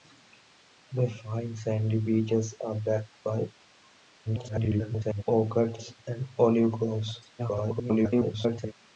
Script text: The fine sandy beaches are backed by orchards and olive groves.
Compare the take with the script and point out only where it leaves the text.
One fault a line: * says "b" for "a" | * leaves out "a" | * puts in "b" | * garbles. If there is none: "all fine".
* garbles
* garbles